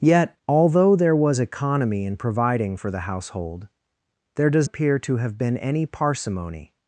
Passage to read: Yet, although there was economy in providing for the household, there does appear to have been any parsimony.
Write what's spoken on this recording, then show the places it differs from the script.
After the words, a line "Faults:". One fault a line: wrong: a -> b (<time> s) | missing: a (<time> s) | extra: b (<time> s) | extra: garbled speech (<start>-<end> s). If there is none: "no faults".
Yet, although there was economy in providing for the household, there does appear to have been any parsimony.
Faults:
no faults